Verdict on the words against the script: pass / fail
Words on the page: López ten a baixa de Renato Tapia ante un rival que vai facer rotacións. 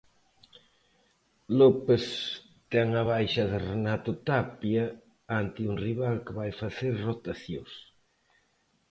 pass